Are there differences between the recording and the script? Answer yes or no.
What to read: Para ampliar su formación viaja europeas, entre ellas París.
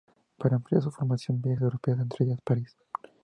no